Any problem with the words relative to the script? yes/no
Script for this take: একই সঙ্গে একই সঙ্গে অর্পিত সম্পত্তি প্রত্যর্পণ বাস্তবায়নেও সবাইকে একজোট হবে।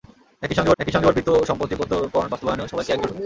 no